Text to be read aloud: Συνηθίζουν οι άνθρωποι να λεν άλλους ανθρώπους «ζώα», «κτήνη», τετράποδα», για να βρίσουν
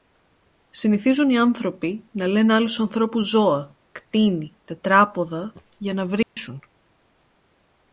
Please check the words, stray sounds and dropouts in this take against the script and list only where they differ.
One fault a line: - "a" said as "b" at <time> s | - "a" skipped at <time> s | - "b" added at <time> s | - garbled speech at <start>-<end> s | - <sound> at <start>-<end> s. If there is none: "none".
- dropout at 6.2-6.4 s